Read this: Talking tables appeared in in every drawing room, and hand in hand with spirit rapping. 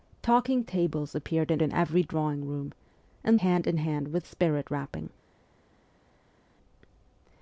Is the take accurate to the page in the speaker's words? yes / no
yes